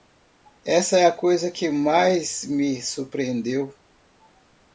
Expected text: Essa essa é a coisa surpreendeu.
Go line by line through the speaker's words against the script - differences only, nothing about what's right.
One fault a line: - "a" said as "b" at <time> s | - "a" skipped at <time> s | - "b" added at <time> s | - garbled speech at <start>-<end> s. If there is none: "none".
- "essa" skipped at 1.0 s
- "que mais me" added at 1.5 s